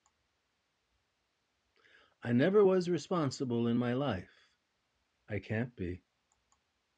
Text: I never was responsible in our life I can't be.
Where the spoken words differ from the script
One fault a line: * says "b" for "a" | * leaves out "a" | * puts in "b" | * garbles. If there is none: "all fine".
* says "my" for "our"